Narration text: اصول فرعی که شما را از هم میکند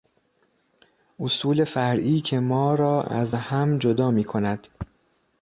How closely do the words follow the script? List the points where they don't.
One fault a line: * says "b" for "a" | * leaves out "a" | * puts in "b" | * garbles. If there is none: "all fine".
* says "ما" for "شما"
* puts in "جدا"